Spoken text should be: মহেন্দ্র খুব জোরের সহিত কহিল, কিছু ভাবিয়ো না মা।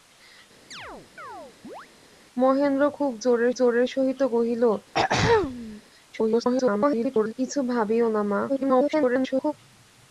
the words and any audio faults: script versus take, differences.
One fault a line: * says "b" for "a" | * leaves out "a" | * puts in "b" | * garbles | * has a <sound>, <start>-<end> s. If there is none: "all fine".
* has a chirp, 0.7-1.9 s
* puts in "জোরের"
* has a throat clearing, 4.9-5.8 s
* garbles
* garbles